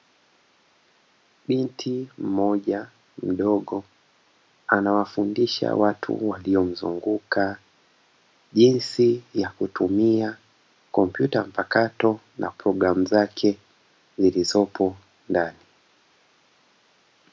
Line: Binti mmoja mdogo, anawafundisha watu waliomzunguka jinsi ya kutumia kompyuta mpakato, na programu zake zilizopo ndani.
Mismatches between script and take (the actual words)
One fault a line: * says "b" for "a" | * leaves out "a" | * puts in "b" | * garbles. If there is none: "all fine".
all fine